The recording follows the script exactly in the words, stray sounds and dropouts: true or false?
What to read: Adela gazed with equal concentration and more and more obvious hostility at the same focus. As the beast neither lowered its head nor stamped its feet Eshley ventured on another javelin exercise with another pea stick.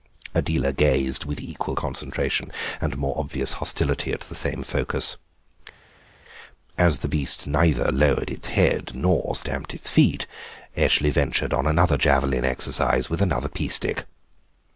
false